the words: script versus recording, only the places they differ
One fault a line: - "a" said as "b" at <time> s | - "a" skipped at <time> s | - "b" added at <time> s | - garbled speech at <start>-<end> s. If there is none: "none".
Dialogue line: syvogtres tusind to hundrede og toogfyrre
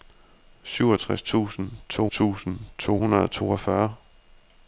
- "tusind to" added at 2.1 s